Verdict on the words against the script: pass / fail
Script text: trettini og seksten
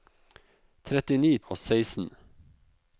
pass